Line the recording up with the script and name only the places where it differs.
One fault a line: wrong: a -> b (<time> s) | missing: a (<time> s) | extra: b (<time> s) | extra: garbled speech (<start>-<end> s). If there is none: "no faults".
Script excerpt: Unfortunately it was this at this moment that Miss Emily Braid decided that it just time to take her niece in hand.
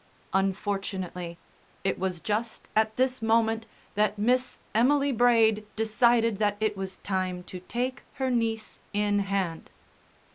wrong: this -> just (2.2 s)
wrong: just -> was (6.8 s)